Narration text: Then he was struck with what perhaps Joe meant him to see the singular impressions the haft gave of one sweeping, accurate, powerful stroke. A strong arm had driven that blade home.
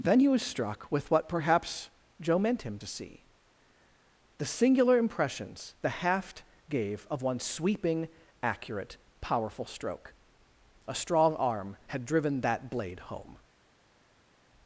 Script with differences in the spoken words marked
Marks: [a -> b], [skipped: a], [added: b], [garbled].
Then he was struck with what perhaps Joe meant him to see the singular impressions the haft gave of one sweeping, accurate, powerful stroke. A strong arm had driven that blade home.